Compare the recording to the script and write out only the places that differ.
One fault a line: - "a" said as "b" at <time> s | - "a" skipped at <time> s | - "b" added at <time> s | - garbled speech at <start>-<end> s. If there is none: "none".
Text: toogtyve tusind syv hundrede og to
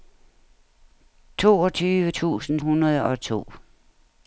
- "syv" skipped at 2.6 s